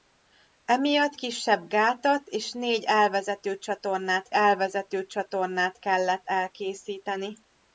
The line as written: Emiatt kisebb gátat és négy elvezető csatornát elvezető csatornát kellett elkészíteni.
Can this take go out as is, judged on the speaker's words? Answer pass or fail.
pass